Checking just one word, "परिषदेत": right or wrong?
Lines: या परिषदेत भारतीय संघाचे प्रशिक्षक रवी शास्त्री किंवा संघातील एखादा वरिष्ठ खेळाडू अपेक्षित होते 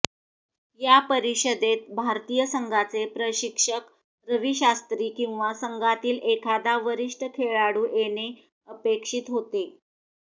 right